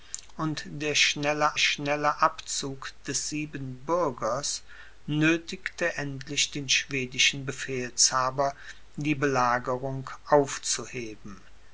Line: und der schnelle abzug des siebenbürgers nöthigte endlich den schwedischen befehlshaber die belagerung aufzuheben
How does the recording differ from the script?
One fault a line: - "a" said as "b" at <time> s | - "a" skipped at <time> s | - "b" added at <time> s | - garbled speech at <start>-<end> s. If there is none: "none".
- "schnelle" added at 1.6 s